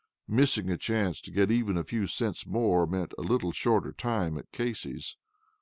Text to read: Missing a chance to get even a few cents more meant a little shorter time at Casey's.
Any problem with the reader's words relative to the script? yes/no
no